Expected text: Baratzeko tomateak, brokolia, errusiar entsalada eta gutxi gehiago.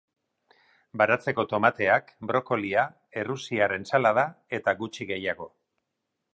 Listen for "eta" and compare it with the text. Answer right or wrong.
right